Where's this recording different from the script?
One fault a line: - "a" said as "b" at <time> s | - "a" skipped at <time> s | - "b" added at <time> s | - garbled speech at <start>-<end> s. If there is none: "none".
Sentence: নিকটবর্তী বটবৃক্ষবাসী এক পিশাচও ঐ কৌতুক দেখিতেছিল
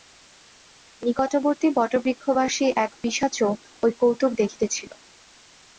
none